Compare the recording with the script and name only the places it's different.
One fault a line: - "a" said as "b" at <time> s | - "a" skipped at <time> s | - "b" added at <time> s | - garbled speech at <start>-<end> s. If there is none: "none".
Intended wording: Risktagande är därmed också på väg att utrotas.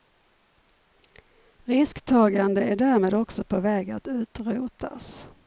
none